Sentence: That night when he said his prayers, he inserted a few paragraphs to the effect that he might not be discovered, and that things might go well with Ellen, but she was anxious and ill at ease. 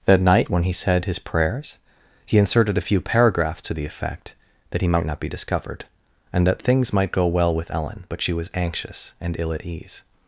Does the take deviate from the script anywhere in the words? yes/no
no